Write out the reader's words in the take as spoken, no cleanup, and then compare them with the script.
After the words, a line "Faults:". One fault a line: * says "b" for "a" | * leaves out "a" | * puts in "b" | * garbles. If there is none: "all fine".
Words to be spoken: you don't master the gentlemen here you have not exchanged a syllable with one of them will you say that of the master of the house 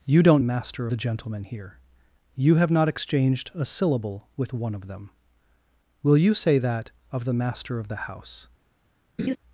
you don't master the gentlemen here you have not exchanged a syllable with one of them will you say that of the master of the house
Faults:
all fine